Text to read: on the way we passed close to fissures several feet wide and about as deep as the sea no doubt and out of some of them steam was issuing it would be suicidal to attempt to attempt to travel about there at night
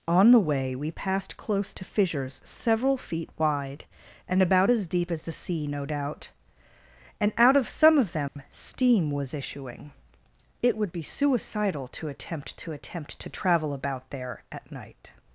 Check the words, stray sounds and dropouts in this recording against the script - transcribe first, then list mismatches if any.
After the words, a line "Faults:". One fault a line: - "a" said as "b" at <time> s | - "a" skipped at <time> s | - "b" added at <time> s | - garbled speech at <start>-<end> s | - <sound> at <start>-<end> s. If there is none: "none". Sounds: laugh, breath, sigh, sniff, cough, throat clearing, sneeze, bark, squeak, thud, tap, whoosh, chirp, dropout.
on the way we passed close to fissures several feet wide and about as deep as the sea no doubt and out of some of them steam was issuing it would be suicidal to attempt to attempt to travel about there at night
Faults:
- dropout at 8.3-8.4 s